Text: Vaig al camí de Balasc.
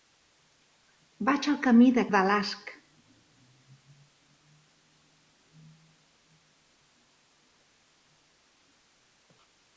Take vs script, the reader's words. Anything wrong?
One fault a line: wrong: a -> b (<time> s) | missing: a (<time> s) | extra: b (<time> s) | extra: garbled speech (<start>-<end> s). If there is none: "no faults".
no faults